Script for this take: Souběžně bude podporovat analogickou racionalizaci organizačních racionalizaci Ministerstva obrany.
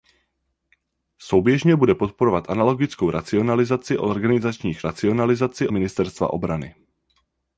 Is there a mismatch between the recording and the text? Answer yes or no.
no